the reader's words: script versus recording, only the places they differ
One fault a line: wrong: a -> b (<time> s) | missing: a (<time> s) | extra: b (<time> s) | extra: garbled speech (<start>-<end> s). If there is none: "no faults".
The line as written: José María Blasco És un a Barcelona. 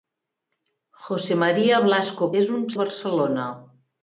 no faults